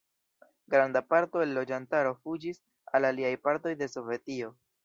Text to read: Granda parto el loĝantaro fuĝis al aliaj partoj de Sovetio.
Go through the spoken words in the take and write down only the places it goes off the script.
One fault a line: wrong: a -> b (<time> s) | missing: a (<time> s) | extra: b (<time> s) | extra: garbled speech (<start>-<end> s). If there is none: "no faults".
no faults